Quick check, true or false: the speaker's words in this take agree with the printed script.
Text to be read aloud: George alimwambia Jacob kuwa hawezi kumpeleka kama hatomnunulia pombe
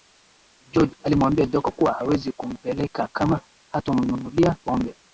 true